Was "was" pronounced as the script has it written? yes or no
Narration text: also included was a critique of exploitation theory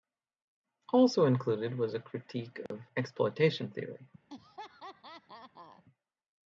yes